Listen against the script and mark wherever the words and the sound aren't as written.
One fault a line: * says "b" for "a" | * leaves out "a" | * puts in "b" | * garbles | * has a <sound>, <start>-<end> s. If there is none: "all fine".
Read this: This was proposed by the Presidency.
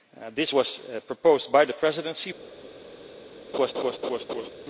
* has a laugh, 3.5-4.5 s